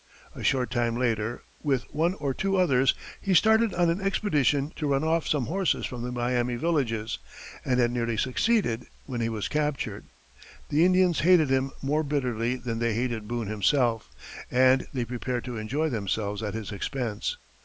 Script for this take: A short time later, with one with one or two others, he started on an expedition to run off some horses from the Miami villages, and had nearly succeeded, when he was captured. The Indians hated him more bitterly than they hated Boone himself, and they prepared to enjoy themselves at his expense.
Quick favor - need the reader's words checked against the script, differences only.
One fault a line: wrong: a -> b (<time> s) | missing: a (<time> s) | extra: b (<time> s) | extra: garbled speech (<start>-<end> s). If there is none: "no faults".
missing: with one (2.1 s)